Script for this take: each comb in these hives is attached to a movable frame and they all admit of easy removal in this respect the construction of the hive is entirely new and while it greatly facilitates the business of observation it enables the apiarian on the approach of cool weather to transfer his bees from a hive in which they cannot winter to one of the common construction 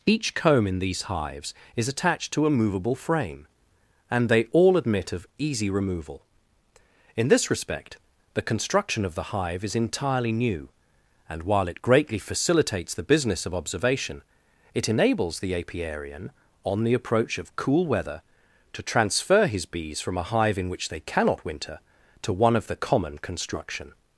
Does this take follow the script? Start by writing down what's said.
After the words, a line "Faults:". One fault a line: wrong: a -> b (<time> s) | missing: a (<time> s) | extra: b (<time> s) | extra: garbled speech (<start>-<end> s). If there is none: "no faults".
each comb in these hives is attached to a movable frame and they all admit of easy removal in this respect the construction of the hive is entirely new and while it greatly facilitates the business of observation it enables the apiarian on the approach of cool weather to transfer his bees from a hive in which they cannot winter to one of the common construction
Faults:
no faults